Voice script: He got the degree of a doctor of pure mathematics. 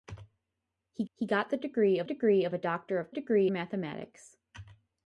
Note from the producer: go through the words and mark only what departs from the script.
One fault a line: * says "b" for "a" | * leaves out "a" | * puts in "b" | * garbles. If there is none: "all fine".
* puts in "he"
* puts in "degree of"
* says "degree" for "pure"